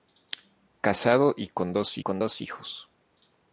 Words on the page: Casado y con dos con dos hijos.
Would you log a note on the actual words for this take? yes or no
no